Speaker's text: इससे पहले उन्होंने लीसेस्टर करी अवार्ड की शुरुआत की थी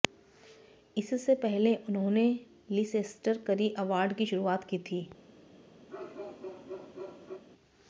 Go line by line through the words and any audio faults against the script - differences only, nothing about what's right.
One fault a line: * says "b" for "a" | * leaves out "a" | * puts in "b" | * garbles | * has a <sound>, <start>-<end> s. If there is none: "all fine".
* has a bark, 5.9-7.4 s